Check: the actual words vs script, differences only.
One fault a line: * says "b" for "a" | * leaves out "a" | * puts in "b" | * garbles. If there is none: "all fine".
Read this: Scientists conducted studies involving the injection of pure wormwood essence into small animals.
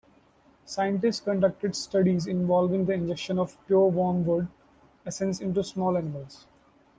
all fine